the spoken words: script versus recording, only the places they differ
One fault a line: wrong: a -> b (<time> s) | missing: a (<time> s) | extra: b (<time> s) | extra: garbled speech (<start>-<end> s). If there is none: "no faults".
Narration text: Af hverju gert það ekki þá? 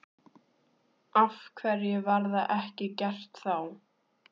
wrong: gert -> var (2.1 s)
extra: gert (3.0 s)